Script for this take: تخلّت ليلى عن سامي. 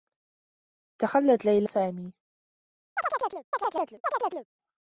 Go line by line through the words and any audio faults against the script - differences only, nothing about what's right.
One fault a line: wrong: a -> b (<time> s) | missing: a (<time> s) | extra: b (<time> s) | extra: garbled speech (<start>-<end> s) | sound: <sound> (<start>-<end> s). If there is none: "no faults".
missing: عن (1.7 s)
sound: chirp (3.0-4.5 s)